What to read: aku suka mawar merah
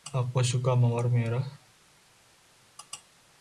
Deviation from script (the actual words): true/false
false